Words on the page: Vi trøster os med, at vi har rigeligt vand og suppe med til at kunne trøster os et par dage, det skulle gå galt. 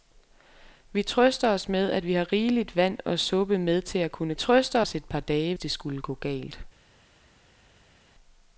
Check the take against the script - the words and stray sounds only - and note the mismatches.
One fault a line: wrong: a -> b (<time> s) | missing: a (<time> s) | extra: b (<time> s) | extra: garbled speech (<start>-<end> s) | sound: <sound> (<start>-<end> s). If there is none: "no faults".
no faults